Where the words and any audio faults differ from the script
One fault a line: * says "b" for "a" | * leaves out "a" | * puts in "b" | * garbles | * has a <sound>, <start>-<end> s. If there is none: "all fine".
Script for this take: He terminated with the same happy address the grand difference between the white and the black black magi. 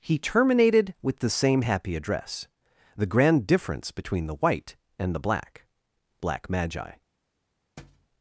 * has a thud, 7.8-8.1 s